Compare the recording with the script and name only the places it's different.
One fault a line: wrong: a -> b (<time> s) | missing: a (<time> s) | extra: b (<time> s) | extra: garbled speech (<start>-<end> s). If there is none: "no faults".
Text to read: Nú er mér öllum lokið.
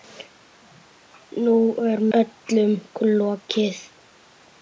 missing: mér (2.0 s)